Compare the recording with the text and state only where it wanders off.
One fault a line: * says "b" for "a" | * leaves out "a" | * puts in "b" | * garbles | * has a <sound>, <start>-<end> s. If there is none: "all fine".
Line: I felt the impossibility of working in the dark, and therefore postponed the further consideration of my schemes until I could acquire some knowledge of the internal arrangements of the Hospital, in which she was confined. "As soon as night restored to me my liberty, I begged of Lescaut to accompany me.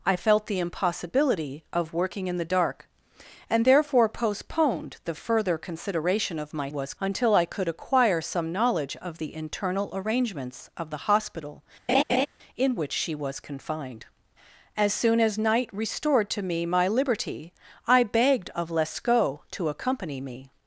* says "was" for "schemes"
* has a laugh, 11.9-12.3 s